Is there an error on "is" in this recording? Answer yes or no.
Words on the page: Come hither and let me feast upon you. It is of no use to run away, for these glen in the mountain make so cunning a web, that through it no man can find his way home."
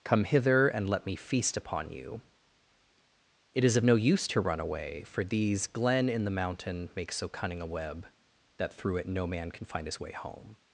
no